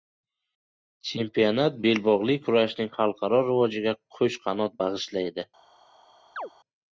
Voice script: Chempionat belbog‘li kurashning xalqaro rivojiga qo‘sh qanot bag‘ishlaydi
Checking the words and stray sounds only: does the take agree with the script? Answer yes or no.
no